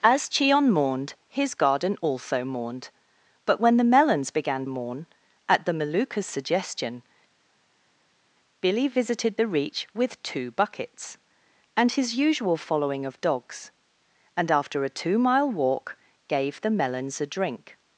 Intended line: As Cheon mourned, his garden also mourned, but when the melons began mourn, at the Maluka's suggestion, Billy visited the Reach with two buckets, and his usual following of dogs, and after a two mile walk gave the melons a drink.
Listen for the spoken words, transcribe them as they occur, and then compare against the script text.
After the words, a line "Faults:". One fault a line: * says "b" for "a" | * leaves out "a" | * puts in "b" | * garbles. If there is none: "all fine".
As Cheon mourned, his garden also mourned, but when the melons began mourn, at the Maluka's suggestion, Billy visited the Reach with two buckets, and his usual following of dogs, and after a two mile walk gave the melons a drink.
Faults:
all fine